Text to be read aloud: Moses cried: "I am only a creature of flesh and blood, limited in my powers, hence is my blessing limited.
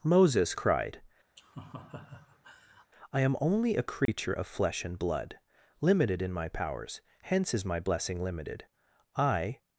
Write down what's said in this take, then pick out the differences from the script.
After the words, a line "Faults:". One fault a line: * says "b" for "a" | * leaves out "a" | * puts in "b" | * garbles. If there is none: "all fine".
Moses cried: "I am only a creature of flesh and blood, limited in my powers, hence is my blessing limited. I
Faults:
* puts in "I"